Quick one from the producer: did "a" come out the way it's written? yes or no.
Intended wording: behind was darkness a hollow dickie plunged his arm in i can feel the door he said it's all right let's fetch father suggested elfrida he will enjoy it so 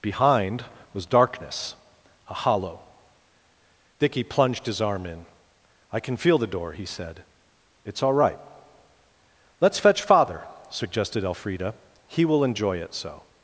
yes